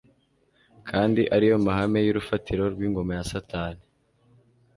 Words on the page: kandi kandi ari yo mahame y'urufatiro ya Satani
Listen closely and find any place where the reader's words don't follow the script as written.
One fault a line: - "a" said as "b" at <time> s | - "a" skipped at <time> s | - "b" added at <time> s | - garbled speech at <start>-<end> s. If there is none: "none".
- "kandi" skipped at 1.2 s
- "rw'ingoma" added at 2.7 s